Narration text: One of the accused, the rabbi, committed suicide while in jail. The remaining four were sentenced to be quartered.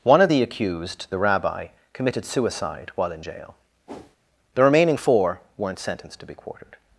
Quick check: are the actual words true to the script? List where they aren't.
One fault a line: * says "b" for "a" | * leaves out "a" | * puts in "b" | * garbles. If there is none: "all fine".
* says "weren't" for "were"